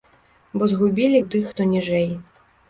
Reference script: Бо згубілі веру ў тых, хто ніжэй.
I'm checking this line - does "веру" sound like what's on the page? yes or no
no